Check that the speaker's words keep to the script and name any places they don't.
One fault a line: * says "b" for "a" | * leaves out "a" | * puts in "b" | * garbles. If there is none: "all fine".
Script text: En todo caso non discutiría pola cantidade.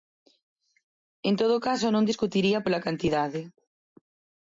all fine